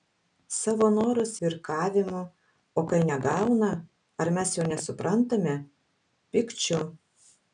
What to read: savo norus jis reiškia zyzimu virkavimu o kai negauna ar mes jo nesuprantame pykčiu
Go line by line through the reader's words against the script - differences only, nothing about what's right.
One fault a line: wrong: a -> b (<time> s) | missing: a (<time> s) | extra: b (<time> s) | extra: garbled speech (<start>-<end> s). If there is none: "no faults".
missing: jis reiškia zyzimu (1.3 s)